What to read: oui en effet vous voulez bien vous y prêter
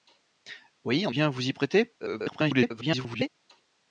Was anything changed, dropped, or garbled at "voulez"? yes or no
yes